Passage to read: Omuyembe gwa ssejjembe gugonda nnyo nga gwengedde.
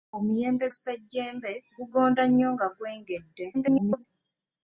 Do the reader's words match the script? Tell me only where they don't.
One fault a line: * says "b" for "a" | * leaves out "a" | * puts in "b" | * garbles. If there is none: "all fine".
* leaves out "gwa"
* garbles